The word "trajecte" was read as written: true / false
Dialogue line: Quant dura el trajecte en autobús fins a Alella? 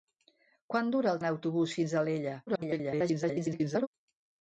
false